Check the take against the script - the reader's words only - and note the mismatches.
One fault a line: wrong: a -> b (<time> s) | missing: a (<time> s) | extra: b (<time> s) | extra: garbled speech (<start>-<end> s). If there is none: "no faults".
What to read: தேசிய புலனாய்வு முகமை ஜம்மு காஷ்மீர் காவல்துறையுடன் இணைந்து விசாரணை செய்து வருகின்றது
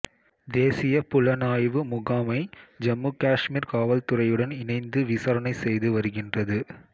no faults